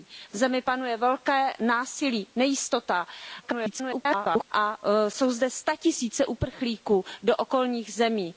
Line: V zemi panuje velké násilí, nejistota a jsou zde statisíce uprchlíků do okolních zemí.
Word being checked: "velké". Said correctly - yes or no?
yes